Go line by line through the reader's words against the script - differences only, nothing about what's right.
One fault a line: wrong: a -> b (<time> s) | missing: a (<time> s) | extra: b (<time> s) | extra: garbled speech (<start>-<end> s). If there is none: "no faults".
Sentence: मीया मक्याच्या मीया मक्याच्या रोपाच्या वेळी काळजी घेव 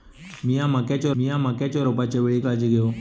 no faults